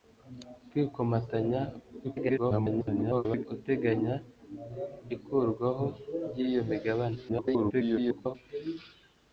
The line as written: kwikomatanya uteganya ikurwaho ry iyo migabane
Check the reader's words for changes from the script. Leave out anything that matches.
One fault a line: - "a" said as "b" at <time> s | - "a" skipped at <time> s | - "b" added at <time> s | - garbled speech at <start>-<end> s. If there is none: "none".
- garbled speech at 2.0-3.5 s
- garbled speech at 7.3-8.4 s